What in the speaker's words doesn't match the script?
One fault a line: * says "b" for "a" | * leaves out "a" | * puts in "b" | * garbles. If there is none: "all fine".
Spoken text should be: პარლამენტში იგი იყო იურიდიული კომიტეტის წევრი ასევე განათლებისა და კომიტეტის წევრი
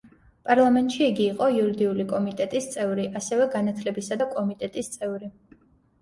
all fine